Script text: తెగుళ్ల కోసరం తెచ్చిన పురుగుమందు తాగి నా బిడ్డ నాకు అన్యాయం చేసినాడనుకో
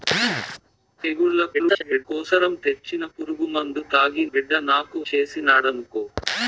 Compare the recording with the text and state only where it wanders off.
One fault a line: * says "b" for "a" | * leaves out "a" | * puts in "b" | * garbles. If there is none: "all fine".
* garbles
* leaves out "నా"
* leaves out "అన్యాయం"